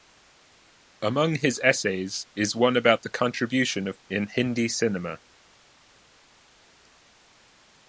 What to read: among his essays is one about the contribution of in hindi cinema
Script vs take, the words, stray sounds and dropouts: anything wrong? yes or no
no